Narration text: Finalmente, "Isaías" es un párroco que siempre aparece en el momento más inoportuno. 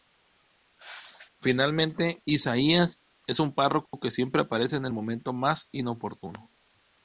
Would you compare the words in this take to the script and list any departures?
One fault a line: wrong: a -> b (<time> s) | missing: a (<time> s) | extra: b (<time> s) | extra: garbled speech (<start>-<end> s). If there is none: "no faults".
no faults